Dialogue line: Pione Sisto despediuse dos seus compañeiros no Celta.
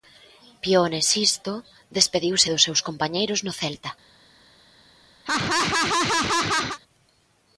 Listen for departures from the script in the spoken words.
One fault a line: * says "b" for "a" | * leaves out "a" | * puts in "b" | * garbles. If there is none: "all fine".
all fine